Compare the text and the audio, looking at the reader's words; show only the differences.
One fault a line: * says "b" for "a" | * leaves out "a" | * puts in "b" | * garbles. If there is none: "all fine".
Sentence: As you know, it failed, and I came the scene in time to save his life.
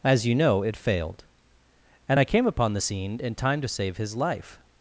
* puts in "upon"